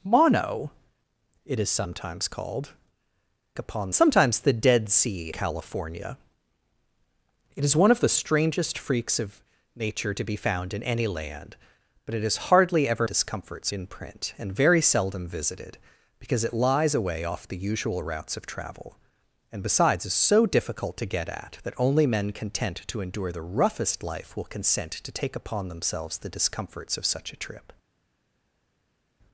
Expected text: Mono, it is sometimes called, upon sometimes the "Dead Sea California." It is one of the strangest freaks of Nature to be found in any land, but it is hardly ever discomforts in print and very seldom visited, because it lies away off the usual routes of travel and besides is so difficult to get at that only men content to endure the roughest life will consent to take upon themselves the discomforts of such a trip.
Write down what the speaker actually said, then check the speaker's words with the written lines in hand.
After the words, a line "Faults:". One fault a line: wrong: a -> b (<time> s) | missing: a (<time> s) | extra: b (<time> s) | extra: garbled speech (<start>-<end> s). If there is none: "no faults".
Mono, it is sometimes called, upon sometimes the "Dead Sea California." It is one of the strangest freaks of Nature to be found in any land, but it is hardly ever discomforts in print and very seldom visited, because it lies away off the usual routes of travel and besides is so difficult to get at that only men content to endure the roughest life will consent to take upon themselves the discomforts of such a trip.
Faults:
no faults